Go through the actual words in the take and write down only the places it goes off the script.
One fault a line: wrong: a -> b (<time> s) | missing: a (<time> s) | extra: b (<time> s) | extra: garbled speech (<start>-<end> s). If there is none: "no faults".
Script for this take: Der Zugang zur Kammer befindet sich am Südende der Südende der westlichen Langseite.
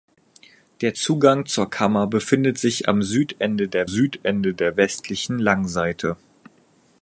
no faults